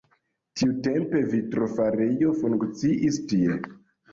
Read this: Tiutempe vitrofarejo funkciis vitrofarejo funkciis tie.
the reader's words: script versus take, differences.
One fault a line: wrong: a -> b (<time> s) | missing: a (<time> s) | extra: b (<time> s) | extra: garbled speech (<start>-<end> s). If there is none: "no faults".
missing: vitrofarejo funkciis (3.2 s)